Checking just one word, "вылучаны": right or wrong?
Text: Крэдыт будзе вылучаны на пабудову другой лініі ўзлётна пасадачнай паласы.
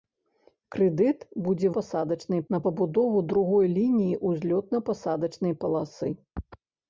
wrong